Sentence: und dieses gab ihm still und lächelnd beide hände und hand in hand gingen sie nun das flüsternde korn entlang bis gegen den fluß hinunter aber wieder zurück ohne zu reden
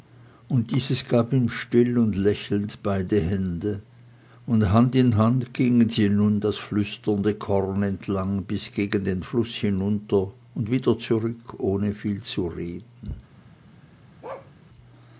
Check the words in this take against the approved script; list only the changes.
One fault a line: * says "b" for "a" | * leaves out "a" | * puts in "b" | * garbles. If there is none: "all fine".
* says "und" for "aber"
* puts in "viel"